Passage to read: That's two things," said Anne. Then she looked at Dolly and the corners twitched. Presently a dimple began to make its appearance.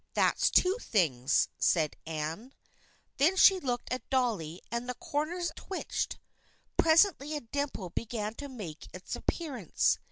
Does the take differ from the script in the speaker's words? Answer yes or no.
no